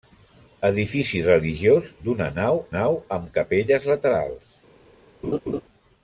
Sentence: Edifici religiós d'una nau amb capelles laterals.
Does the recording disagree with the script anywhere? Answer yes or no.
yes